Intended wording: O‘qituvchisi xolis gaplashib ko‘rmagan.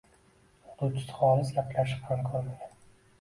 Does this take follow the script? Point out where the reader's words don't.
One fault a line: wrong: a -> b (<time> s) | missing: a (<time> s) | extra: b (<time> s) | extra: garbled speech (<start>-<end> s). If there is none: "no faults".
extra: ham (2.1 s)